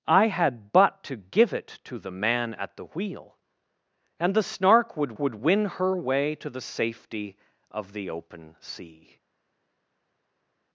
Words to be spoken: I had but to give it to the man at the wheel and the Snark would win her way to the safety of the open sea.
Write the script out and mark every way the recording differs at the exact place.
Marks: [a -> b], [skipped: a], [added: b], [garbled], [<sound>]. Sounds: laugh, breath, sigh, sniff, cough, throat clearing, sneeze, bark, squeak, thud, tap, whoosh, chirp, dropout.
I had but to give it to the man at the wheel and the Snark would [added: would] win her way to the safety of the open sea.